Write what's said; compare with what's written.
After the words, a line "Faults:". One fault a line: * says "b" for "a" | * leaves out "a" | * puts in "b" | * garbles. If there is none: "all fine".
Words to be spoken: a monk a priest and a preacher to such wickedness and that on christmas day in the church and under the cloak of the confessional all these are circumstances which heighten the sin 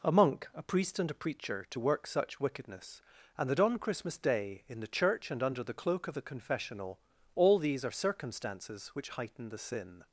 a monk a priest and a preacher to work such wickedness and that on christmas day in the church and under the cloak of the confessional all these are circumstances which heighten the sin
Faults:
* puts in "work"